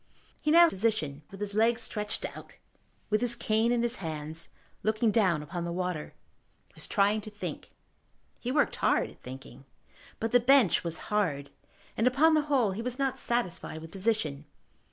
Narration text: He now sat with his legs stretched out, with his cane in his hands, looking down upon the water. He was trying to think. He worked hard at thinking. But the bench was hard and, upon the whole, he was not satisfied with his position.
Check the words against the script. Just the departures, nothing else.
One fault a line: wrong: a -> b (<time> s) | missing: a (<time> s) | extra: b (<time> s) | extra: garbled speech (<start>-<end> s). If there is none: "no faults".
wrong: sat -> position (0.7 s)
missing: his (13.9 s)